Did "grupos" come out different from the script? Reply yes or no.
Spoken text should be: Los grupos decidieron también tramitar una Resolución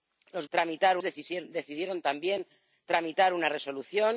yes